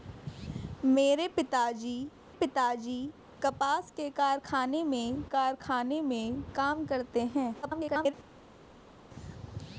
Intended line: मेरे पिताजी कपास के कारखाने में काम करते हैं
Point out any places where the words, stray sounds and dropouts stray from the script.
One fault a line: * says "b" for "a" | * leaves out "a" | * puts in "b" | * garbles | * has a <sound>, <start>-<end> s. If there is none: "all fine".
* puts in "पिताजी"
* puts in "कारखाने में"
* garbles